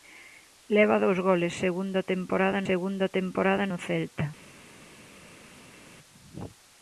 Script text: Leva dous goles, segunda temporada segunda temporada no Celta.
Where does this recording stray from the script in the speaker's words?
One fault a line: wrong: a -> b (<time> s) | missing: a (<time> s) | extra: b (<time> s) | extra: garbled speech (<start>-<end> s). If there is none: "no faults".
no faults